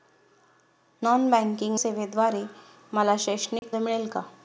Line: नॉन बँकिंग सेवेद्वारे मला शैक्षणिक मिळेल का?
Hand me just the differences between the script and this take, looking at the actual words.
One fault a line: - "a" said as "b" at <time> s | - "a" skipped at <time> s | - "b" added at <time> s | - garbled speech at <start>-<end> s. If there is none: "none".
none